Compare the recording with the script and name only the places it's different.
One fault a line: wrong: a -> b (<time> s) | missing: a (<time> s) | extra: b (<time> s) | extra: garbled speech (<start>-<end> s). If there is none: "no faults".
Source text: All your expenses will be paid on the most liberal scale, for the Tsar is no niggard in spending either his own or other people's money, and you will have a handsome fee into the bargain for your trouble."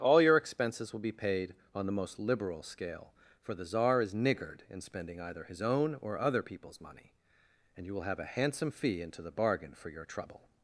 missing: no (4.2 s)